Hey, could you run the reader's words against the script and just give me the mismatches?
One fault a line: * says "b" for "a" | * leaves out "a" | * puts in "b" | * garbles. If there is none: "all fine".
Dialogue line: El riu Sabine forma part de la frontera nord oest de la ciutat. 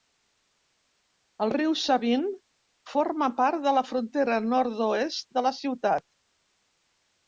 all fine